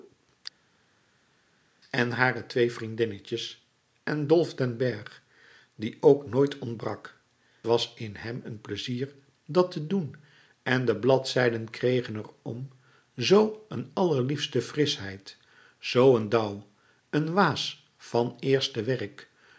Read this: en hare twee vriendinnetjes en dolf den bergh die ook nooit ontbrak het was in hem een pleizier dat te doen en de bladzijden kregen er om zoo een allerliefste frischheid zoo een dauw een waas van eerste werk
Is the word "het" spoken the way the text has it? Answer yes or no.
no